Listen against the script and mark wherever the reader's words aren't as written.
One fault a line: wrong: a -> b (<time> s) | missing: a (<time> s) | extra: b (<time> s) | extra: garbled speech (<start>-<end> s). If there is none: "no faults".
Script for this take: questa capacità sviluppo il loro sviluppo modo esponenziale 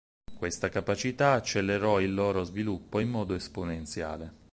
wrong: sviluppo -> accelerò (1.3 s)
extra: in (3.0 s)